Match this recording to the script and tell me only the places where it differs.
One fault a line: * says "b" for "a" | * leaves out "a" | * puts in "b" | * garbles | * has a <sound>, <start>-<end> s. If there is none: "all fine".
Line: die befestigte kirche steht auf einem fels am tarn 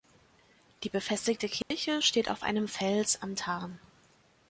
* has a dropout, 1.6-1.7 s